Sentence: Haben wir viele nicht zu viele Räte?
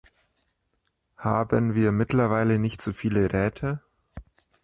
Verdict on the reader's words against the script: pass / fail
fail